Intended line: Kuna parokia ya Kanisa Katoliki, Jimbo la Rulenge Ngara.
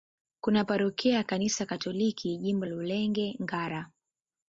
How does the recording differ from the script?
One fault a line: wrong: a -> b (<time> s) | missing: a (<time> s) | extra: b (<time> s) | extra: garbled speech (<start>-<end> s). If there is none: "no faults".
missing: la (2.6 s)